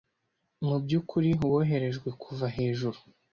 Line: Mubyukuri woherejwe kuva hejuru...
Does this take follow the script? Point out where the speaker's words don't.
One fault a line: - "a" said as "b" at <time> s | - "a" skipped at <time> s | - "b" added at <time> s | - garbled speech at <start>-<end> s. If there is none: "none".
none